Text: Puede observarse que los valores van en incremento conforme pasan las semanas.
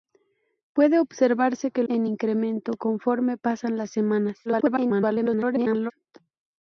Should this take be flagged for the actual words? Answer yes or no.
yes